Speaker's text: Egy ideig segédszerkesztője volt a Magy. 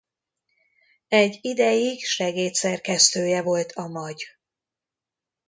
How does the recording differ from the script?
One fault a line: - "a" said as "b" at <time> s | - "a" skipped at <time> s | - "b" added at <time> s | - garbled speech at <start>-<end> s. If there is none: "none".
none